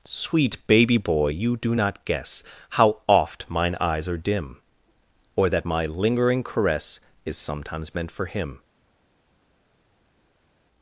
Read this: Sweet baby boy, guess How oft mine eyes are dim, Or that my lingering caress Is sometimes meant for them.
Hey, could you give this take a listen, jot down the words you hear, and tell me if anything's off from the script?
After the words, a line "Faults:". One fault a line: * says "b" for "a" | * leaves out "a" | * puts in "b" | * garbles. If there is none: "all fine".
Sweet baby boy, you do not guess How oft mine eyes are dim, Or that my lingering caress Is sometimes meant for him.
Faults:
* puts in "you do not"
* says "him" for "them"